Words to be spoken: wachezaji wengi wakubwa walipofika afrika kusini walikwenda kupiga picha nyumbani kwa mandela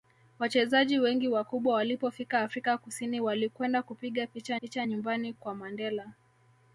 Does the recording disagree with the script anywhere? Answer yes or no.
yes